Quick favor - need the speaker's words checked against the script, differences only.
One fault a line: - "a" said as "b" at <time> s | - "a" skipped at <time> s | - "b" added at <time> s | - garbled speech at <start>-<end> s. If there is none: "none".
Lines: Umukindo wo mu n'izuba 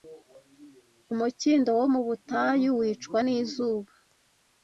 - "butayu wicwa" added at 2.1 s